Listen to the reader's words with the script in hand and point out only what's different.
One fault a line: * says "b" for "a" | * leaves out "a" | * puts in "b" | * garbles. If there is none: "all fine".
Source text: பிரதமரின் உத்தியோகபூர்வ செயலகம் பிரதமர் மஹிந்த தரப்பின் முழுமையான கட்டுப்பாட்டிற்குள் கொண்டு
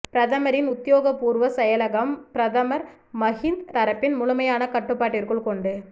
all fine